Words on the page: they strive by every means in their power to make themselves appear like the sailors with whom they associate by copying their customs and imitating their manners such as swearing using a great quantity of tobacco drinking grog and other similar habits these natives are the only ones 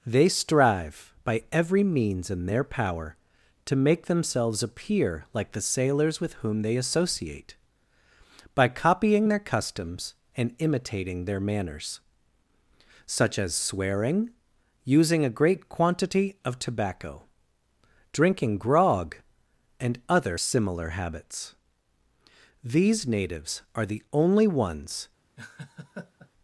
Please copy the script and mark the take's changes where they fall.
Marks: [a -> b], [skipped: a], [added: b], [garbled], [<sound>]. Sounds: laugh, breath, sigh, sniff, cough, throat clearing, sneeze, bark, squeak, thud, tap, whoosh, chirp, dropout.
they strive by every means in their power to make themselves appear like the sailors with whom they associate by copying their customs and imitating their manners such as swearing using a great quantity of tobacco drinking grog and other similar habits these natives are the only ones [laugh]